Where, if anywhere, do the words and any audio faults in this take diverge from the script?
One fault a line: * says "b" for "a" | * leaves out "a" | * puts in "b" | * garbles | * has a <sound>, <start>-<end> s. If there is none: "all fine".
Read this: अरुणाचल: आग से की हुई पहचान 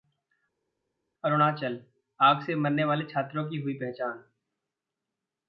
* puts in "मरने वाले छात्रों"